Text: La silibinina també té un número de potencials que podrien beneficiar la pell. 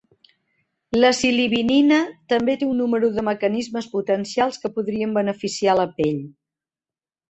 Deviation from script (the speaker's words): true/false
true